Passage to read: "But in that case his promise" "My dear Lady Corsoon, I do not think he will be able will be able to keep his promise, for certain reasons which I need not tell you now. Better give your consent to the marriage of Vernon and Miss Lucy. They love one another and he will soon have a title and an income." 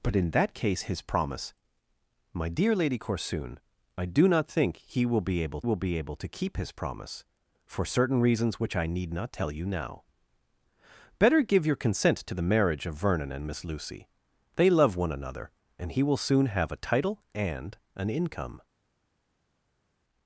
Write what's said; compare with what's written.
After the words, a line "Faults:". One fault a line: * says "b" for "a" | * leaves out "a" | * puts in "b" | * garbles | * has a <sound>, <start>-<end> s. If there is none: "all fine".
"But in that case his promise" "My dear Lady Corsoon, I do not think he will be able will be able to keep his promise, for certain reasons which I need not tell you now. Better give your consent to the marriage of Vernon and Miss Lucy. They love one another and he will soon have a title and an income."
Faults:
all fine